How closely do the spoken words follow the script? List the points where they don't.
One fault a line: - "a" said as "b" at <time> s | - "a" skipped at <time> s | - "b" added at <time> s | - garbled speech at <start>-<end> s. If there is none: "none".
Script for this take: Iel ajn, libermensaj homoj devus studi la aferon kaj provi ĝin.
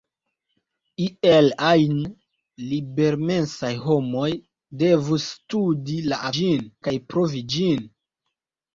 - "aferon" said as "ĝin" at 6.4 s